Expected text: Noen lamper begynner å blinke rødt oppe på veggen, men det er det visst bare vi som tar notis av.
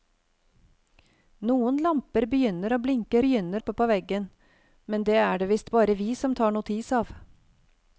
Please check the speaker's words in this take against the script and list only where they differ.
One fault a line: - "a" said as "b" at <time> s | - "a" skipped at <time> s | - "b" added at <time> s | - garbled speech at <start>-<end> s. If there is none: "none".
- "rødt" said as "begynner" at 3.2 s